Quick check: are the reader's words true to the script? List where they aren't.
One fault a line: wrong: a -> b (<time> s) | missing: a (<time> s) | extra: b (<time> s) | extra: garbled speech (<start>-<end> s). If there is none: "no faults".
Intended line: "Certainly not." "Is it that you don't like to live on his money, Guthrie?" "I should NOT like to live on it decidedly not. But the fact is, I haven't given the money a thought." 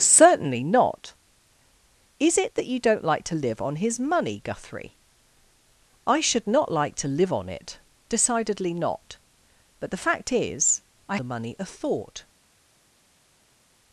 missing: haven't given (11.2 s)